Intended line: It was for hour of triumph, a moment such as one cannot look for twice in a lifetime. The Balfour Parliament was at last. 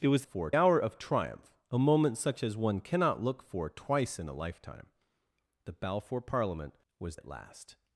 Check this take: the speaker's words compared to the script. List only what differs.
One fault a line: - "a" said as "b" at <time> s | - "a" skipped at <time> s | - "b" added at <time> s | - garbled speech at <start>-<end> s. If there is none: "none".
none